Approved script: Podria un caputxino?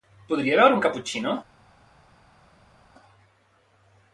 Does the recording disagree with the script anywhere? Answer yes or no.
yes